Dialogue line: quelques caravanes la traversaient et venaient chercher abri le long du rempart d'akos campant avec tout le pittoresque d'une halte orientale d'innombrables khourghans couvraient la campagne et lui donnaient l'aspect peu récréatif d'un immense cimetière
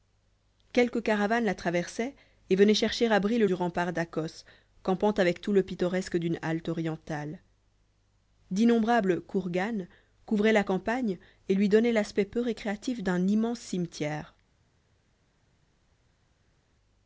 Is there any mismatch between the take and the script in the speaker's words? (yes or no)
yes